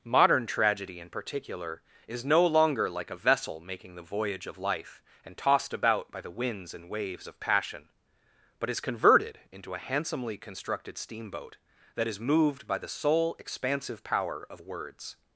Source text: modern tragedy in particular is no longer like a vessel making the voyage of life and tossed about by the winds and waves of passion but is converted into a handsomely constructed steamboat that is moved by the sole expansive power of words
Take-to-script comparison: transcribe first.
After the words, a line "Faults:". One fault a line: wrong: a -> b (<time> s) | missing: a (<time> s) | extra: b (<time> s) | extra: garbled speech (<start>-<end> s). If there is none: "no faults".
modern tragedy in particular is no longer like a vessel making the voyage of life and tossed about by the winds and waves of passion but is converted into a handsomely constructed steamboat that is moved by the sole expansive power of words
Faults:
no faults